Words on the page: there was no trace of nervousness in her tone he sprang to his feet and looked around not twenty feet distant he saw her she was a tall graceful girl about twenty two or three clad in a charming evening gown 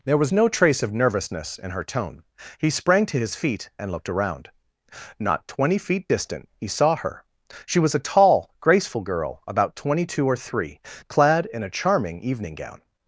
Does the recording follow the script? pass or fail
pass